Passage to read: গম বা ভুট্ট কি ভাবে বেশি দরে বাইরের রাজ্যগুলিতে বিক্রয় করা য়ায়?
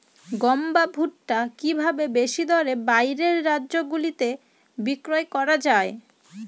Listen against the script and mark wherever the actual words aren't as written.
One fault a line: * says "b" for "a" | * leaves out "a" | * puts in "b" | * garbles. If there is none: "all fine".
all fine